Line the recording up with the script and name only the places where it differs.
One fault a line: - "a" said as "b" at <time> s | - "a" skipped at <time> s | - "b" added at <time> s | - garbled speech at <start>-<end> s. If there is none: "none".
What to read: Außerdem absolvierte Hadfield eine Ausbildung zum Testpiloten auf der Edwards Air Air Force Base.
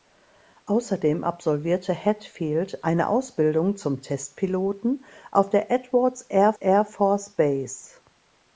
none